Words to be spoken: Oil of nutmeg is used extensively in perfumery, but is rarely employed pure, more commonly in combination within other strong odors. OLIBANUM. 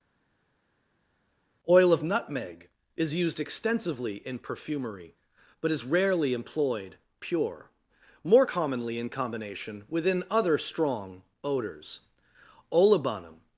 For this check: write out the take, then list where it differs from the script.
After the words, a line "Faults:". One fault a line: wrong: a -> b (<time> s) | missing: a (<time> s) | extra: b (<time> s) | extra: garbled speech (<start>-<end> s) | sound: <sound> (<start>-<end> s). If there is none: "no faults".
Oil of nutmeg is used extensively in perfumery, but is rarely employed pure, more commonly in combination within other strong odors. OLIBANUM.
Faults:
no faults